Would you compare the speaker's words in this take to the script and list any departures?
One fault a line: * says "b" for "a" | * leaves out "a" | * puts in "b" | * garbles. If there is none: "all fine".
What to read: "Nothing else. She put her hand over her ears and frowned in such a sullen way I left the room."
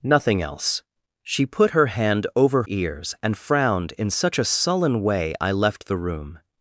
* leaves out "her"